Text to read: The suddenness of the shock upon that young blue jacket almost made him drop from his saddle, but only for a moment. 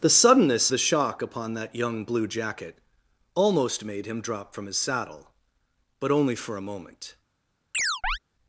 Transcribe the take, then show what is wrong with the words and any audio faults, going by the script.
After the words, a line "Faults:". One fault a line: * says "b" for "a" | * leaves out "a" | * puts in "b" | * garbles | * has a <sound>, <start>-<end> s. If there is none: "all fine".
The suddenness the shock upon that young blue jacket almost made him drop from his saddle, but only for a moment.
Faults:
* leaves out "of"
* has a chirp, 7.7-8.2 s